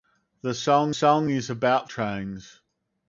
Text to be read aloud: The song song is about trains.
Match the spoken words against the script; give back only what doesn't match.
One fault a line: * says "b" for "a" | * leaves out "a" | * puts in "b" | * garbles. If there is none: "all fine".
all fine